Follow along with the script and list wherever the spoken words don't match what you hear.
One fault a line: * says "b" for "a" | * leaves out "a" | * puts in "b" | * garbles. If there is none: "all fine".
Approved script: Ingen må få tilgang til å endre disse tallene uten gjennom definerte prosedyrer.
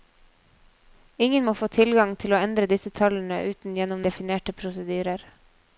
all fine